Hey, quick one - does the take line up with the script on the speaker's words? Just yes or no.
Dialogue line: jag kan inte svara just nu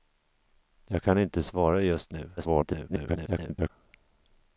no